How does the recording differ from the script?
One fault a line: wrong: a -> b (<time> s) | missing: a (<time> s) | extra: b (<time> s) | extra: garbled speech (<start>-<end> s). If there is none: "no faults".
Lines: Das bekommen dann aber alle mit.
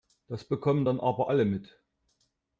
no faults